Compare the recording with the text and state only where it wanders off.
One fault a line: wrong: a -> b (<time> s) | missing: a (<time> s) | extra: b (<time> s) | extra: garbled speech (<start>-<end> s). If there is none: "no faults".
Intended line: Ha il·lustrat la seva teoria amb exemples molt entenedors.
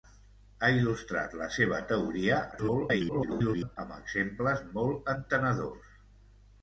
extra: garbled speech (2.5-3.8 s)